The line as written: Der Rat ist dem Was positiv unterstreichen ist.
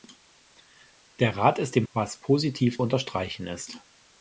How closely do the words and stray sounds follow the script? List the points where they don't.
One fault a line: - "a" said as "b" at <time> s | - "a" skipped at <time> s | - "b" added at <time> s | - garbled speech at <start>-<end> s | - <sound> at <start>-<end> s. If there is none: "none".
none